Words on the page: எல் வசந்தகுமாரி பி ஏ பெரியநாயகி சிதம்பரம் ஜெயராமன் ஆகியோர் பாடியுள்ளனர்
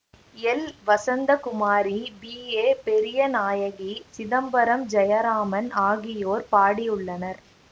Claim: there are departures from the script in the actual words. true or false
false